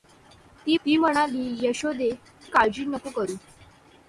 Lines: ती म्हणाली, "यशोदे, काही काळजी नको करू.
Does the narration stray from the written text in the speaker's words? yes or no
yes